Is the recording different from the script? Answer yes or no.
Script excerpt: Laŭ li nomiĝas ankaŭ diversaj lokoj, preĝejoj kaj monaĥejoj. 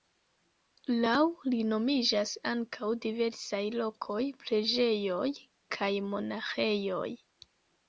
no